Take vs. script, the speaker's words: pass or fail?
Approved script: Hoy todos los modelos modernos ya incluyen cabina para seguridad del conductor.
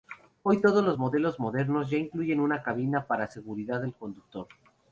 fail